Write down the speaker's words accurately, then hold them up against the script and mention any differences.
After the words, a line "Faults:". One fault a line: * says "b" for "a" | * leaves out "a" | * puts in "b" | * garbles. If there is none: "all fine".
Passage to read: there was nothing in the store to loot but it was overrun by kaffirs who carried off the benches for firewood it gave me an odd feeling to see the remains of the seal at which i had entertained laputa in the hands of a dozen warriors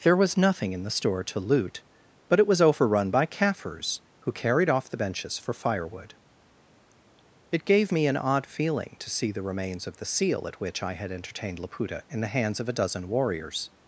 there was nothing in the store to loot but it was overrun by kaffirs who carried off the benches for firewood it gave me an odd feeling to see the remains of the seal at which i had entertained laputa in the hands of a dozen warriors
Faults:
all fine